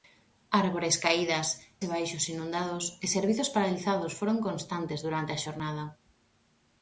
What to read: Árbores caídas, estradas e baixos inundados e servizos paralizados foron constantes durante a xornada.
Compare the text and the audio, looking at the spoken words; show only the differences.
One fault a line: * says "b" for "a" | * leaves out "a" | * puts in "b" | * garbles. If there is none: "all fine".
* leaves out "estradas"